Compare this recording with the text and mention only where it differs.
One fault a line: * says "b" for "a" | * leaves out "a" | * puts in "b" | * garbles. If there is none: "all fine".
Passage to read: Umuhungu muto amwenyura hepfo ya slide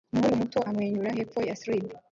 all fine